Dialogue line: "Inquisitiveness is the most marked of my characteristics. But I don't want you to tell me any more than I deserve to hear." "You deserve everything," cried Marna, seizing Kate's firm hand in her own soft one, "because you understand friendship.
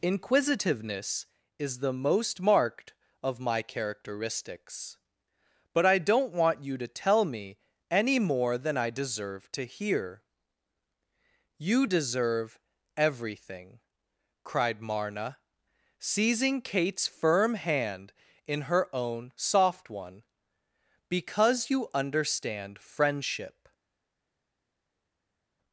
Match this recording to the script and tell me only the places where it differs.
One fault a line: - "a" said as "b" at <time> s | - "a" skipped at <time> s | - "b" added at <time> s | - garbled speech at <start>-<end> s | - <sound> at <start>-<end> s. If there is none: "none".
none